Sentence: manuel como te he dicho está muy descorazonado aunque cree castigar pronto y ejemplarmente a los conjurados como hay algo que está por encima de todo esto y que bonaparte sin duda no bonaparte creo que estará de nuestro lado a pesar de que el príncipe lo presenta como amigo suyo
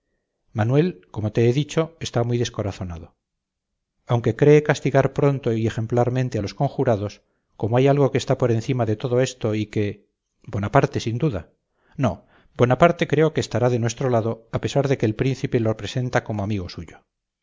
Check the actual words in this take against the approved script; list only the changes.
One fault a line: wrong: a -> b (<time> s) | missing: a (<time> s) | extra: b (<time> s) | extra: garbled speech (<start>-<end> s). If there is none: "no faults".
no faults